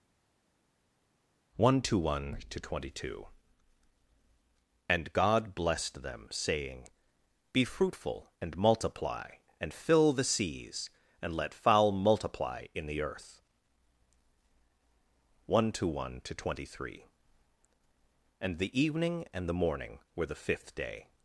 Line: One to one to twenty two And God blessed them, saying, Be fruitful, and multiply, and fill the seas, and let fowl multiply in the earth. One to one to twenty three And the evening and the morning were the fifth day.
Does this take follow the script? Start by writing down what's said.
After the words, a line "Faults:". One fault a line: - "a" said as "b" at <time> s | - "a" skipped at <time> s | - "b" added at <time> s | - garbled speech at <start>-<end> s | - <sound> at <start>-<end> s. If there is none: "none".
One to one to twenty two And God blessed them, saying, Be fruitful, and multiply, and fill the seas, and let fowl multiply in the earth. One to one to twenty three And the evening and the morning were the fifth day.
Faults:
none